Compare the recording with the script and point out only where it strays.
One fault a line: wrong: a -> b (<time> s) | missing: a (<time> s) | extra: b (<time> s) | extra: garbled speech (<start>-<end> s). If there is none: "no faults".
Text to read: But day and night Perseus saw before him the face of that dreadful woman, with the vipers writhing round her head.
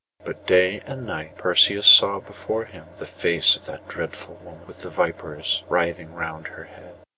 no faults